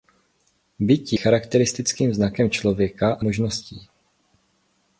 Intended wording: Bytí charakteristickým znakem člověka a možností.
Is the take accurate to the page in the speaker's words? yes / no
yes